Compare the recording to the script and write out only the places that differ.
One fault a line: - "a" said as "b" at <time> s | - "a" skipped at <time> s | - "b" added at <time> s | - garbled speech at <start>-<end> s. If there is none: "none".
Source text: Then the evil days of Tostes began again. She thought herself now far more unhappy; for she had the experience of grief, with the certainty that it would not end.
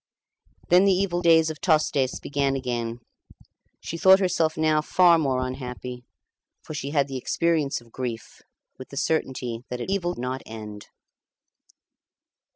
- "would" said as "evil" at 9.8 s